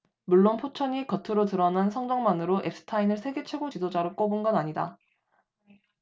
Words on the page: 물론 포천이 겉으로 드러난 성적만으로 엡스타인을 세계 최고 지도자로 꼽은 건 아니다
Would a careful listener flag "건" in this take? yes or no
no